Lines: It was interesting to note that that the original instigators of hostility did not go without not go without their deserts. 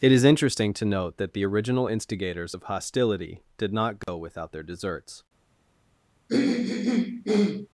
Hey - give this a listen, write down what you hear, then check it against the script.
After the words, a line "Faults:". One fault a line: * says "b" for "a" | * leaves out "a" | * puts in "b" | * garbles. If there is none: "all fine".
It is interesting to note that the original instigators of hostility did not go without their deserts.
Faults:
* says "is" for "was"
* leaves out "that"
* leaves out "not go without"